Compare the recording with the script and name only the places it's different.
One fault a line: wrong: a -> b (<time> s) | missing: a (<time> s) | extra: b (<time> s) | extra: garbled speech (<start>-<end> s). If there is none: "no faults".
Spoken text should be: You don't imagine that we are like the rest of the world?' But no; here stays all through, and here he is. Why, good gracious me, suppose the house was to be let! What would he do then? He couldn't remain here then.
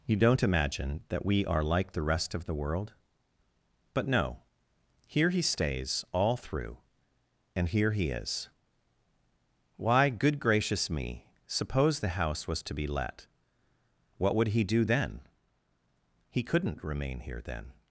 extra: he (5.3 s)